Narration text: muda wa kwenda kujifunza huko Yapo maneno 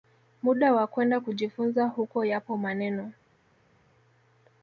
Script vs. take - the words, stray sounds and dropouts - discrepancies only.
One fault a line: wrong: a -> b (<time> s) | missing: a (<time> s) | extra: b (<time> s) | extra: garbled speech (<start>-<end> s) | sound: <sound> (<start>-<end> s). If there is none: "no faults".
no faults